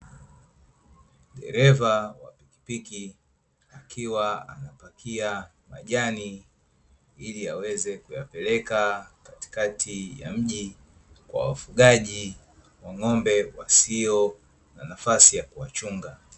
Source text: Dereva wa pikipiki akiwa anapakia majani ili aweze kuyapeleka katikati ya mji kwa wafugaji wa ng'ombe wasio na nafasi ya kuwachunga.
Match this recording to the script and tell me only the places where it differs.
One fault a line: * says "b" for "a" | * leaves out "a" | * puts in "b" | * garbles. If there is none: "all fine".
all fine